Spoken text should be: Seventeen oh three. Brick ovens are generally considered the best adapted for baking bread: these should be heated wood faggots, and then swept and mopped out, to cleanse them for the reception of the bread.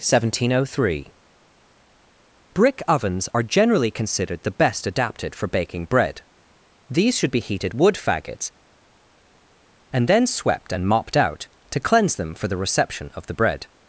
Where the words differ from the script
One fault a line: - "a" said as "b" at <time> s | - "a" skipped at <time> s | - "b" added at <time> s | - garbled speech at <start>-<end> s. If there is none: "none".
none